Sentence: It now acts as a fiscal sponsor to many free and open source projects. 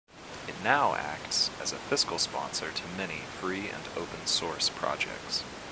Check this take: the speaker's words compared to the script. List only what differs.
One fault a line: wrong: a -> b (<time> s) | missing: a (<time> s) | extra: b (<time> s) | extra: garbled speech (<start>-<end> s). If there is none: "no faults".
no faults